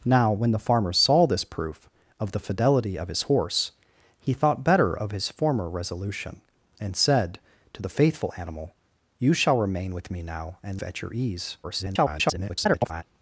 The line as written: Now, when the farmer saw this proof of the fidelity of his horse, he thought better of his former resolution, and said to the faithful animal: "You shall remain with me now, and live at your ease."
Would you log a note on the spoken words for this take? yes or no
yes